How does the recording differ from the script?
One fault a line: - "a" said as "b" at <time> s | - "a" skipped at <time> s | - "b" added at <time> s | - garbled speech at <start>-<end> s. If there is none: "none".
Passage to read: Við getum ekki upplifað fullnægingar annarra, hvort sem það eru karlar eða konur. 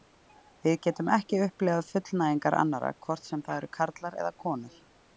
none